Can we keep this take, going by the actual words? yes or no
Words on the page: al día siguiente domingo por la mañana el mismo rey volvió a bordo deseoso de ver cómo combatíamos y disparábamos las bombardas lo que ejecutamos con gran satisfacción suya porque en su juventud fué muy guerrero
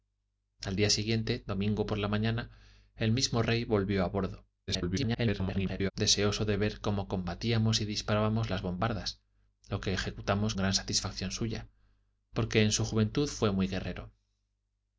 no